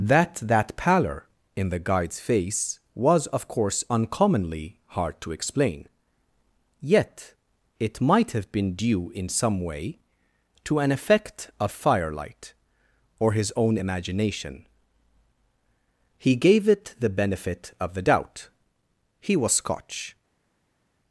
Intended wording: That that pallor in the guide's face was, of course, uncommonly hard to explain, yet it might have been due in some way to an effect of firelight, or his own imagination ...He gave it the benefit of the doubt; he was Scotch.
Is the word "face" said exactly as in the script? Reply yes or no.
yes